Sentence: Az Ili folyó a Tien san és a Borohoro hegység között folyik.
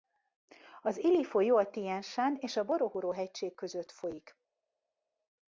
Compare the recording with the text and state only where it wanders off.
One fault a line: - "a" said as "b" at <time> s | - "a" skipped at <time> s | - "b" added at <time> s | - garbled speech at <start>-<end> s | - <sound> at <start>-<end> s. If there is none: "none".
none